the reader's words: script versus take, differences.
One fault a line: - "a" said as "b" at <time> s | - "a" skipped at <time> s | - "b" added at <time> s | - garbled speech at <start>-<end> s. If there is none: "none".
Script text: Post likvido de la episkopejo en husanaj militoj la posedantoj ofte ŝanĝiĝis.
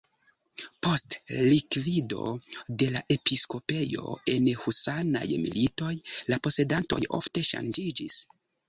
none